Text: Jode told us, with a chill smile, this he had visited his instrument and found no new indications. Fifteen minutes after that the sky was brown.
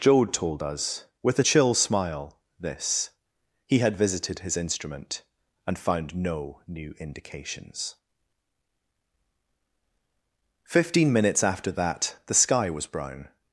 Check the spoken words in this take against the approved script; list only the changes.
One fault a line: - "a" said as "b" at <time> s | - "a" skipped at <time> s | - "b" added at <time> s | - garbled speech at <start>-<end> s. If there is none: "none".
none